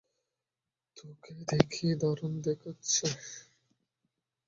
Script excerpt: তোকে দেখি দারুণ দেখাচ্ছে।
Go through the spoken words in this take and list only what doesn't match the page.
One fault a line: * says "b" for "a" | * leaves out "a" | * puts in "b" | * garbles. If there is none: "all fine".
all fine